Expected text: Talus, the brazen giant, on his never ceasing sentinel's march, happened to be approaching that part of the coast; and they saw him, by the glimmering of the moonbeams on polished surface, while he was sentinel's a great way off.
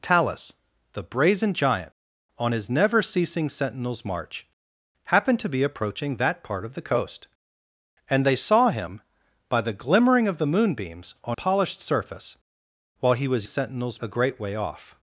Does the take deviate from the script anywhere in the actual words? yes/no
no